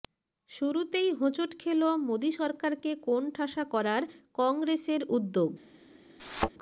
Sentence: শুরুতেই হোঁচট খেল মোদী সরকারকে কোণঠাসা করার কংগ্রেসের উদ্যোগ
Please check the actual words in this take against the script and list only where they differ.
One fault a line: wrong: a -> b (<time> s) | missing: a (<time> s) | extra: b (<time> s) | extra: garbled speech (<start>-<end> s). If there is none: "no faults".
no faults